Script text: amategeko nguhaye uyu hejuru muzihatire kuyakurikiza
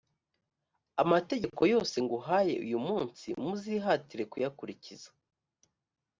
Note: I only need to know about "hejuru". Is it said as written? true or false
false